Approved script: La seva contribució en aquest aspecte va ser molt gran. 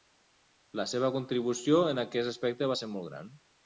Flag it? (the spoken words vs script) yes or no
no